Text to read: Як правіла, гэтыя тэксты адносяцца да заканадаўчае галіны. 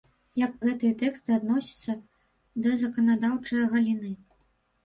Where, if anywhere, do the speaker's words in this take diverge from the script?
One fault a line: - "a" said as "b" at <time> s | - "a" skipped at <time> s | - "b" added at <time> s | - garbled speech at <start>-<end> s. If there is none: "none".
- "правіла" skipped at 0.5 s